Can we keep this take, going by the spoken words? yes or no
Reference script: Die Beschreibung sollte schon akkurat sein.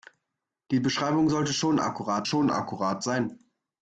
no